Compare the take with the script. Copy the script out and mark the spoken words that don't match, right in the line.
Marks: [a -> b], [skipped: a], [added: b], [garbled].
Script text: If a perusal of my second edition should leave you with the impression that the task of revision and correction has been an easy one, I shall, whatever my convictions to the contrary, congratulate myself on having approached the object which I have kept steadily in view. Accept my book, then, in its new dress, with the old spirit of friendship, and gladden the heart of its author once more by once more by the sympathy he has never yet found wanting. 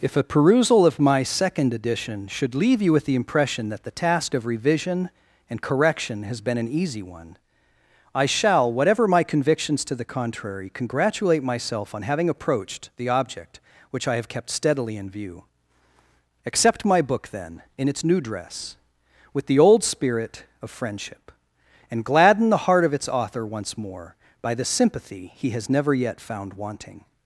If a perusal of my second edition should leave you with the impression that the task of revision and correction has been an easy one, I shall, whatever my convictions to the contrary, congratulate myself on having approached the object which I have kept steadily in view. Accept my book, then, in its new dress, with the old spirit of friendship, and gladden the heart of its author once more by [skipped: once more by] the sympathy he has never yet found wanting.